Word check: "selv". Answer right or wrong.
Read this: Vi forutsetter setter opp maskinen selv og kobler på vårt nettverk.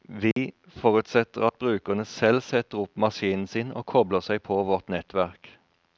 wrong